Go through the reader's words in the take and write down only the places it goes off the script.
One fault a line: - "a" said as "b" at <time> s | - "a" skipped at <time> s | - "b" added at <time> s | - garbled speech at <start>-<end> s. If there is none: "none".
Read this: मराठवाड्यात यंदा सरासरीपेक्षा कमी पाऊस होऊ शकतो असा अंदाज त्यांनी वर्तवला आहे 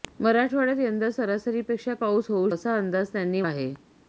- "कमी" skipped at 1.9 s
- "शकतो" skipped at 2.5 s
- "वर्तवला" skipped at 3.4 s